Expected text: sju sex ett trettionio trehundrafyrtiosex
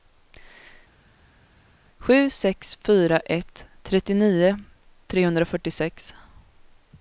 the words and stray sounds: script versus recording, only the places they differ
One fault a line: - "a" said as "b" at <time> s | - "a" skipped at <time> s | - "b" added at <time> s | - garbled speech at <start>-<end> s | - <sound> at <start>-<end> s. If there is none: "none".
- "fyra" added at 2.8 s